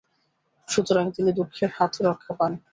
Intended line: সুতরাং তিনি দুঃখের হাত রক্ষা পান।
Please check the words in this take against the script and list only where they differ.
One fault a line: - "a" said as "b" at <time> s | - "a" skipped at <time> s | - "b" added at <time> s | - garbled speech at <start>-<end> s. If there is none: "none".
none